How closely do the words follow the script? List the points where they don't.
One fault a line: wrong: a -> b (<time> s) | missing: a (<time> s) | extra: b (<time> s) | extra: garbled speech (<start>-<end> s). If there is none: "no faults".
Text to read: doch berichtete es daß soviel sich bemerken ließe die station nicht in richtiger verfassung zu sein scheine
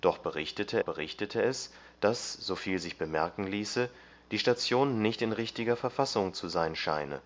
extra: berichtete (0.8 s)